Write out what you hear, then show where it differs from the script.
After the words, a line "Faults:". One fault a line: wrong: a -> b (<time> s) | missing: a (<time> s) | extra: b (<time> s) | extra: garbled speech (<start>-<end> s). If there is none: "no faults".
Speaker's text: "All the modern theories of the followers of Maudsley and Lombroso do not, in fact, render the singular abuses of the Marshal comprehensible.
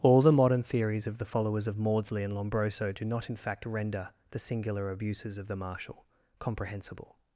"All the modern theories of the followers of Maudsley and Lombroso do not, in fact, render the singular abuses of the Marshal comprehensible.
Faults:
no faults